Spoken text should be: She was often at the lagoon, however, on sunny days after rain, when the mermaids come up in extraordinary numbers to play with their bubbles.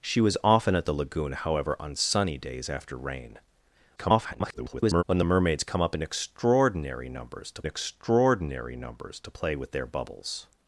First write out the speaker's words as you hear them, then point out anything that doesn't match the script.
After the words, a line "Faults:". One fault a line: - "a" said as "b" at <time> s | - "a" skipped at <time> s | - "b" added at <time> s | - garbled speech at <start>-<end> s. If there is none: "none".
She was often at the lagoon, however, on sunny days after rain, [garbled] when the mermaids come up in extraordinary numbers to extraordinary numbers to play with their bubbles.
Faults:
- garbled speech at 4.0-5.0 s
- "extraordinary numbers to" added at 7.7 s